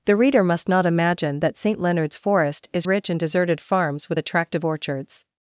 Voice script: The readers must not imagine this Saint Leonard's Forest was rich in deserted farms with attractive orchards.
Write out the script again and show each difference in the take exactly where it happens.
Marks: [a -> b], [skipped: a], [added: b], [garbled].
The [readers -> reader] must not imagine [this -> that] Saint Leonard's Forest [was -> is] rich in deserted farms with attractive orchards.